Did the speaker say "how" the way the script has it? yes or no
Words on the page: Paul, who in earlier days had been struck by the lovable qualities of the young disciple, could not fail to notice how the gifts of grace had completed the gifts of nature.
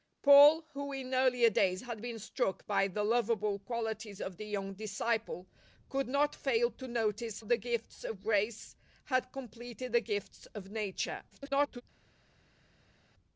no